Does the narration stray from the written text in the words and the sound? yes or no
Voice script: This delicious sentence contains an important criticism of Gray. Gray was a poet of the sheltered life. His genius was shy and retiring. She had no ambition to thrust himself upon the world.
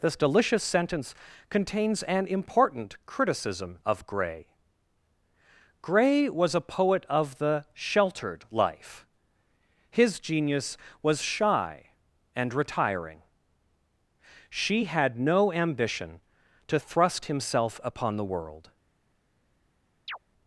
yes